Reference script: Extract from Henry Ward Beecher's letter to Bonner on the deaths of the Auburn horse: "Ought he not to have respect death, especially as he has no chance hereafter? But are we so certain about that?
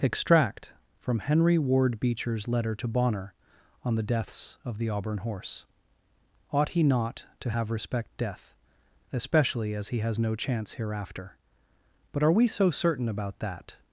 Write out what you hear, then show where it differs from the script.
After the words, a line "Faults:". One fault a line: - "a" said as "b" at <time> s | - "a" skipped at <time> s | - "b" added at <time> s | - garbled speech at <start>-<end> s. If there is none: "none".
Extract from Henry Ward Beecher's letter to Bonner on the deaths of the Auburn horse: "Ought he not to have respect death, especially as he has no chance hereafter? But are we so certain about that?
Faults:
none